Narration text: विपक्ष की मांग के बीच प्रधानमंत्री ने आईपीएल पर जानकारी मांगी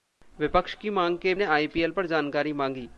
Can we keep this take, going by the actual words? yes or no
no